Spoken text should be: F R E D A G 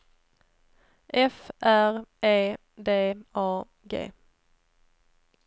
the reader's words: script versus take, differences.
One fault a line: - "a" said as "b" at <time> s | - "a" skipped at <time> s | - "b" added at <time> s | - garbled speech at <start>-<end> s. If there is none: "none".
none